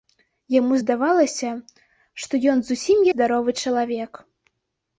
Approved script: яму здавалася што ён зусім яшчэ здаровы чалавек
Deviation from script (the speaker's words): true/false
true